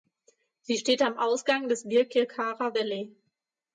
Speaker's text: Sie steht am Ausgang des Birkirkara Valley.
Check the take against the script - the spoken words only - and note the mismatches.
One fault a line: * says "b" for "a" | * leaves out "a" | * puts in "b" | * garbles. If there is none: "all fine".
all fine